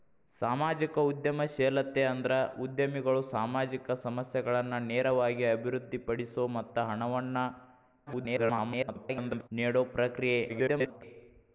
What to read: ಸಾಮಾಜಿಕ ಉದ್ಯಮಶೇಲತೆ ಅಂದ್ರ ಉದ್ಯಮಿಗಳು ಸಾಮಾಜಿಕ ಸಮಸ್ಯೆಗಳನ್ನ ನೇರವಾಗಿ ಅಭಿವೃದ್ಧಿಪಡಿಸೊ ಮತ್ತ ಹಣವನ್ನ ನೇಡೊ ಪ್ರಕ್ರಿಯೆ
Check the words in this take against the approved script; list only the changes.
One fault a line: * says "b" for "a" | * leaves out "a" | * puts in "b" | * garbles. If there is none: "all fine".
* garbles
* garbles